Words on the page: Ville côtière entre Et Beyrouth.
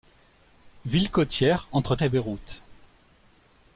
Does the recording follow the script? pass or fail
pass